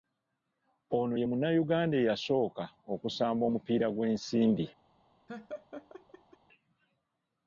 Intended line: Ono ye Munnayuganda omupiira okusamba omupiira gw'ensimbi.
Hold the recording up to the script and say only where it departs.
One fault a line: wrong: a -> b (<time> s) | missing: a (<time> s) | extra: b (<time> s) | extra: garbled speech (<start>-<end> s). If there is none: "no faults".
wrong: omupiira -> eyasooka (2.0 s)